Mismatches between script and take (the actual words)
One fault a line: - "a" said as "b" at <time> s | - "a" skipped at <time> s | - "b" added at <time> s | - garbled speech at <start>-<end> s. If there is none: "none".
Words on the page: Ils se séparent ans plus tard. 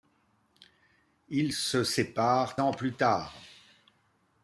none